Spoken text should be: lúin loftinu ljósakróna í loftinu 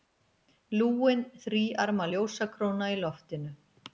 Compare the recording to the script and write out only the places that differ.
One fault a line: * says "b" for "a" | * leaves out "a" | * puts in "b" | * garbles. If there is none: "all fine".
* says "þríarma" for "loftinu"